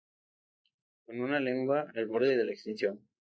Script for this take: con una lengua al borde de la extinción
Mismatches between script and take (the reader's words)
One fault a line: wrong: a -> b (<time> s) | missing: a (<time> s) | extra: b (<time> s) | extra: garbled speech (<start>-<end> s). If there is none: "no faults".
no faults